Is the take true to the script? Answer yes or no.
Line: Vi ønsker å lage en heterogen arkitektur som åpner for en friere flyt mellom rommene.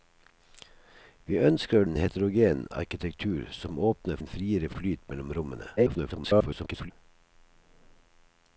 no